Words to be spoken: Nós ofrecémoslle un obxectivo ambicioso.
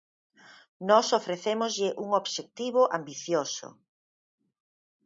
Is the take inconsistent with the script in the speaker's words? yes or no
no